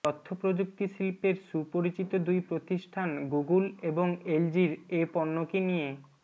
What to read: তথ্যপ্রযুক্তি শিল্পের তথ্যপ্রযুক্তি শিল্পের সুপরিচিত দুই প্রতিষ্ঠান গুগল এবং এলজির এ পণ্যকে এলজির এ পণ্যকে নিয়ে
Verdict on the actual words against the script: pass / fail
fail